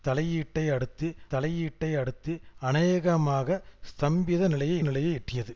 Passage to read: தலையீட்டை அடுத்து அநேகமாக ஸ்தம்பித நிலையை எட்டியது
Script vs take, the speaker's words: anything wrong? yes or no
yes